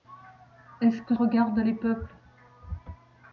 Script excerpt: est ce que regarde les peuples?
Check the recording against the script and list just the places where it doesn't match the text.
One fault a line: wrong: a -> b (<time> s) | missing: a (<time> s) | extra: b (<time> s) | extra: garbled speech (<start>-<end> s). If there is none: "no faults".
no faults